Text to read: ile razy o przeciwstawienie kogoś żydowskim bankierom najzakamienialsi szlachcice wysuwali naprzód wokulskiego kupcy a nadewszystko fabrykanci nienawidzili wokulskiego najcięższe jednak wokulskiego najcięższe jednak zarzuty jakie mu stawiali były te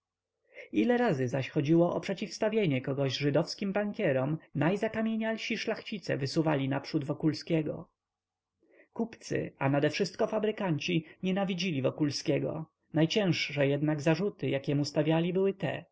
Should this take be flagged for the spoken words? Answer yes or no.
yes